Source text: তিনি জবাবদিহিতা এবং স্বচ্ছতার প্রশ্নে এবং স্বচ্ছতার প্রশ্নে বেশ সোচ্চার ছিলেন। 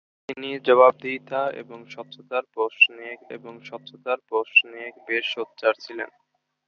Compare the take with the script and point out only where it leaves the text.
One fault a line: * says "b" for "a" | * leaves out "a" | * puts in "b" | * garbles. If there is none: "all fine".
all fine